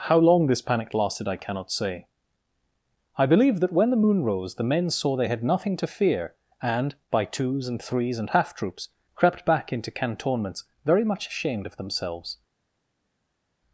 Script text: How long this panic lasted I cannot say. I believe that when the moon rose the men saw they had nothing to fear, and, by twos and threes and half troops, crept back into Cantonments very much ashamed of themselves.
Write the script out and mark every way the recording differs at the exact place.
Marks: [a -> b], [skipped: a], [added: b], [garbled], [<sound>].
How long this panic lasted I cannot say. I believe that when the moon rose the men saw they had nothing to fear, and, by twos and threes and half troops, crept back into Cantonments very much ashamed of themselves.